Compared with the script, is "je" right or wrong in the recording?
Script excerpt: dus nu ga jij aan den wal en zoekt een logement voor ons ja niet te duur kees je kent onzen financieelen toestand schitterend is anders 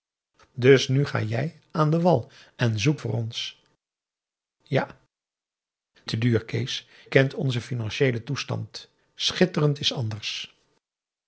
wrong